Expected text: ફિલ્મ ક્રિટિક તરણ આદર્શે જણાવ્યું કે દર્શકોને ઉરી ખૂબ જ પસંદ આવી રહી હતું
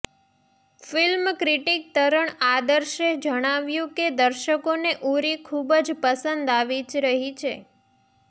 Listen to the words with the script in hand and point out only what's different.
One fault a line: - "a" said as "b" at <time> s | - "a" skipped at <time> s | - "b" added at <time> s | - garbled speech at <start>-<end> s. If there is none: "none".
- "હતું" said as "છે" at 7.4 s